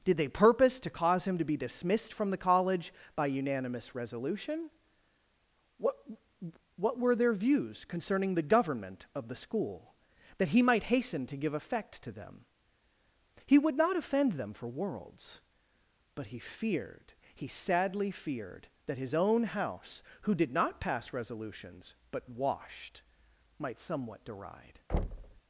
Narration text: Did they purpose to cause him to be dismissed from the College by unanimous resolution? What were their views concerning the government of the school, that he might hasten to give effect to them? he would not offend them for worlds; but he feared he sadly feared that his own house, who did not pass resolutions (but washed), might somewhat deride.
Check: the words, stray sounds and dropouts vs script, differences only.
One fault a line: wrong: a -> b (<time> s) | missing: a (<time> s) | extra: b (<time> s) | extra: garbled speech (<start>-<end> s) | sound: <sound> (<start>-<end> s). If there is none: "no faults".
extra: What (6.8 s)
sound: thud (24.9-25.4 s)